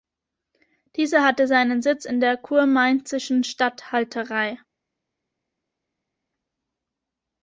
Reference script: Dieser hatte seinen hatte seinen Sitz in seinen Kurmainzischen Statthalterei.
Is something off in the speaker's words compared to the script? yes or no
yes